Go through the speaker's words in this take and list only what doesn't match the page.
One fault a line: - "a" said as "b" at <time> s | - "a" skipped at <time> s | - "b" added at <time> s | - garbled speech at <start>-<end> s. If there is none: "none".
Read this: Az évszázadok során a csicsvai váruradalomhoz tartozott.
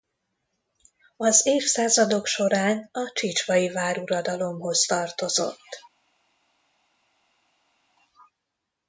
none